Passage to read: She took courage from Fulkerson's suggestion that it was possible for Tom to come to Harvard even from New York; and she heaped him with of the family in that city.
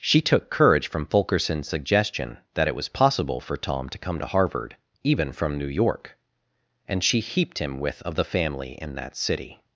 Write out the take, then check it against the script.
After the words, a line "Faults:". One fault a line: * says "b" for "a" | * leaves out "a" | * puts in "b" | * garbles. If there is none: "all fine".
She took courage from Fulkerson's suggestion that it was possible for Tom to come to Harvard even from New York; and she heaped him with of the family in that city.
Faults:
all fine